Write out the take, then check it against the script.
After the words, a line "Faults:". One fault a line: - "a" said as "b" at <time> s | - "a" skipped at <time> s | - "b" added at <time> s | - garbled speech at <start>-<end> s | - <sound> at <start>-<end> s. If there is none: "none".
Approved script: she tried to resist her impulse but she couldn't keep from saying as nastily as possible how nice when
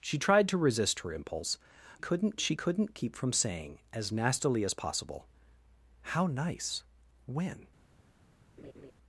she tried to resist her impulse couldn't she couldn't keep from saying as nastily as possible how nice when
Faults:
- "but" said as "couldn't" at 2.0 s
- laugh at 8.6-8.9 s